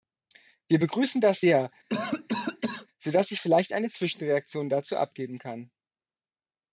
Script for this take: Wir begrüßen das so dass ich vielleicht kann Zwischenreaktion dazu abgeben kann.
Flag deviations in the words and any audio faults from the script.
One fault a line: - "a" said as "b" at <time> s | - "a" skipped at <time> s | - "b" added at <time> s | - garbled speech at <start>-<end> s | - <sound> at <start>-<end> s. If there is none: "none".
- "sehr" added at 1.4 s
- cough at 1.9-2.9 s
- "kann" said as "eine" at 3.7 s